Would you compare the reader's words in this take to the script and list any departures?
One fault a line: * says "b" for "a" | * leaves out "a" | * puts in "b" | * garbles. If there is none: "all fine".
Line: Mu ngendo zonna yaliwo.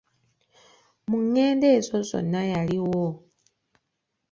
* puts in "ezo"